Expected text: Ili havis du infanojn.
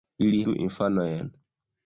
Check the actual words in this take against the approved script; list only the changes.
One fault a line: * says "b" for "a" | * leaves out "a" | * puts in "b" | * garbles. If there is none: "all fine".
* leaves out "havis"